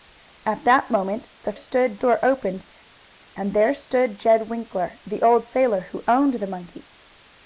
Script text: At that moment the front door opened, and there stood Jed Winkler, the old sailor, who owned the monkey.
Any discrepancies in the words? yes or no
yes